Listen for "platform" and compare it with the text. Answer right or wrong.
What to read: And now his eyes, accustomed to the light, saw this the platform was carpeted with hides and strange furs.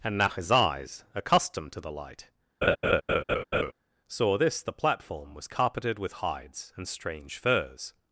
right